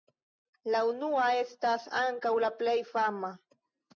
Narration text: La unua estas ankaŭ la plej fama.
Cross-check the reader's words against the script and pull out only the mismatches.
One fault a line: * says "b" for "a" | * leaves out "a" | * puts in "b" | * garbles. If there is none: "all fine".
all fine